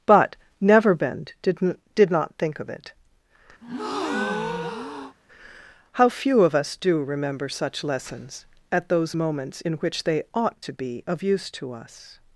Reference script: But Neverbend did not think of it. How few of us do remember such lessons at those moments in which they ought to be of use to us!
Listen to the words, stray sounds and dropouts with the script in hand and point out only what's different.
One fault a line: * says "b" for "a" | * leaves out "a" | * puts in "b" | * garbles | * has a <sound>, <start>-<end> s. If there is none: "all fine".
* puts in "did"
* has a breath, 3.6-5.2 s